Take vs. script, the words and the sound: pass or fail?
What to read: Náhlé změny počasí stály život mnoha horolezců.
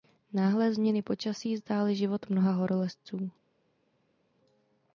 pass